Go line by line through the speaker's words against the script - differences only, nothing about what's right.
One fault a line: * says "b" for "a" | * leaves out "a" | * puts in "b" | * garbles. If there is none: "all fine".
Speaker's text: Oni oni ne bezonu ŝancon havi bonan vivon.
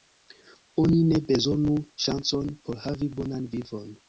* leaves out "oni"
* puts in "por"